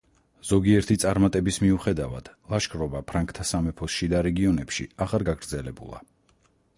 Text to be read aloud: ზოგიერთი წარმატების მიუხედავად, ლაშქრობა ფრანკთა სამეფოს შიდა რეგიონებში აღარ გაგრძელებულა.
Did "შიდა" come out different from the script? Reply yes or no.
no